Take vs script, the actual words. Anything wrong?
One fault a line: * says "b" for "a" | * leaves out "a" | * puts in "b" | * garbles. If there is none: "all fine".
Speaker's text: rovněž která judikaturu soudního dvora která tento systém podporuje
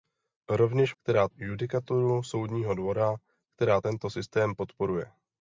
all fine